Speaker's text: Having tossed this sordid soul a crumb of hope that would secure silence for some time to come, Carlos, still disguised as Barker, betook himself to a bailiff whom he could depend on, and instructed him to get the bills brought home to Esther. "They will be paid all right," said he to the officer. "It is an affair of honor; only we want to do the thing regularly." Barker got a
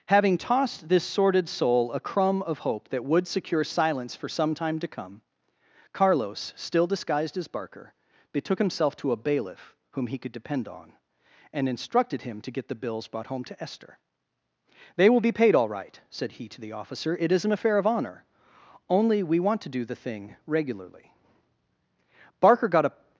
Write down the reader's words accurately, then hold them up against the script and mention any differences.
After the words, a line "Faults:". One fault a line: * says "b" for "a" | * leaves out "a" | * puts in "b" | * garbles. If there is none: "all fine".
Having tossed this sordid soul a crumb of hope that would secure silence for some time to come, Carlos, still disguised as Barker, betook himself to a bailiff whom he could depend on, and instructed him to get the bills brought home to Esther. "They will be paid all right," said he to the officer. "It is an affair of honor; only we want to do the thing regularly." Barker got a
Faults:
all fine